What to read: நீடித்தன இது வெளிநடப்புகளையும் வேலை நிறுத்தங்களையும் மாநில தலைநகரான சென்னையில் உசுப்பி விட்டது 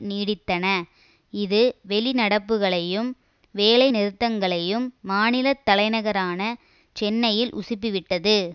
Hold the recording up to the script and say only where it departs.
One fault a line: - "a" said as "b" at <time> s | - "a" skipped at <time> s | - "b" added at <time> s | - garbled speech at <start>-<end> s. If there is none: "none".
none